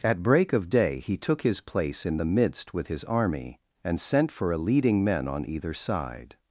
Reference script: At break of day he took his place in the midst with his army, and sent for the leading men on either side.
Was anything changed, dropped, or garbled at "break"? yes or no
no